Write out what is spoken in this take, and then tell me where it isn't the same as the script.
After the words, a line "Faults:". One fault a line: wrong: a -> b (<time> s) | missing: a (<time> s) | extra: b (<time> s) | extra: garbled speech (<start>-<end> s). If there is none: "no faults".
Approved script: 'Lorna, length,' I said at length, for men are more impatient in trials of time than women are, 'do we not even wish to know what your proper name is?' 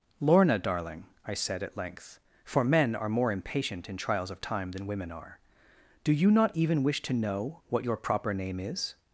'Lorna, darling,' I said at length, for men are more impatient in trials of time than women are, 'do you not even wish to know what your proper name is?'
Faults:
wrong: length -> darling (0.6 s)
wrong: we -> you (6.1 s)